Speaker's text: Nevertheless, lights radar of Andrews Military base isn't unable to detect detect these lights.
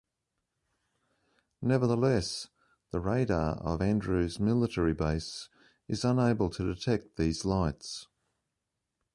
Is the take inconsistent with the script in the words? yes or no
yes